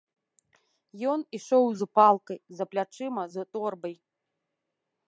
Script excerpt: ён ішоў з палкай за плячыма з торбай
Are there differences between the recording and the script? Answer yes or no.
no